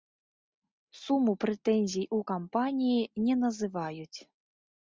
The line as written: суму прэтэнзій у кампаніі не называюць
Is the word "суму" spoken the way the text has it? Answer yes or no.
yes